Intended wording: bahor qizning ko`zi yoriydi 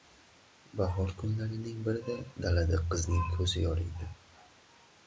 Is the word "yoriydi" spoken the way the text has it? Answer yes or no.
yes